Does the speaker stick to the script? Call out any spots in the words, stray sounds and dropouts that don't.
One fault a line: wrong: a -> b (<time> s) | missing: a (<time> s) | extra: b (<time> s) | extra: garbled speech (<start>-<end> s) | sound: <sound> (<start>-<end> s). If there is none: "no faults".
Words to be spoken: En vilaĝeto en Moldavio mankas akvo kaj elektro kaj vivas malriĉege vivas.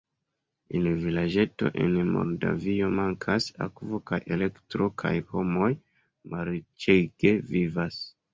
wrong: vivas -> homoj (5.3 s)